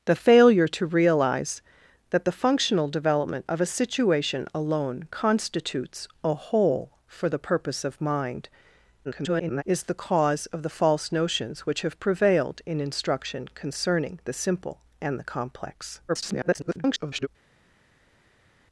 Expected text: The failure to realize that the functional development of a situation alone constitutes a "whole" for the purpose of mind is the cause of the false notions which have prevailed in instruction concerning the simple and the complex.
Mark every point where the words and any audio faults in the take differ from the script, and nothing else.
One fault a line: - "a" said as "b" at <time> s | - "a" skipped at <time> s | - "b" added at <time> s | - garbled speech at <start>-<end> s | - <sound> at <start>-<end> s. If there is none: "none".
- garbled speech at 9.0-9.6 s
- garbled speech at 16.1-17.3 s